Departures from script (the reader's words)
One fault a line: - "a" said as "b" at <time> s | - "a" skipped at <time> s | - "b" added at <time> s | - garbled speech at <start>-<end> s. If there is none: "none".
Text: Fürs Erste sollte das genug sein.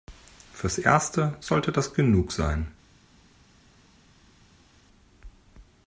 none